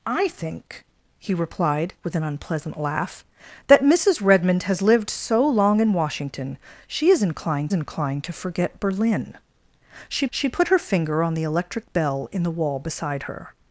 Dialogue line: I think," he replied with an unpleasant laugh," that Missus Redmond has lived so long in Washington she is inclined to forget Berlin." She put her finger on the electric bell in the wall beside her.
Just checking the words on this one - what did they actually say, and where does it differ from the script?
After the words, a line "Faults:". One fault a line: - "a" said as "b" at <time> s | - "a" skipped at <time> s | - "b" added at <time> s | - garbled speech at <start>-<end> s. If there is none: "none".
I think," he replied with an unpleasant laugh," that Missus Redmond has lived so long in Washington she is inclined inclined to forget Berlin." She she put her finger on the electric bell in the wall beside her.
Faults:
- "inclined" added at 7.7 s
- "she" added at 10.3 s